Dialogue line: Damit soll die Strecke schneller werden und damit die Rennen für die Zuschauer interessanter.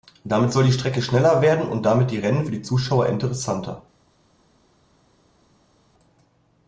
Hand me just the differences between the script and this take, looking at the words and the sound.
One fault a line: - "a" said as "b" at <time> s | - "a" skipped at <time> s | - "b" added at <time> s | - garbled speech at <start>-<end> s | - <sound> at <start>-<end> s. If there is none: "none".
none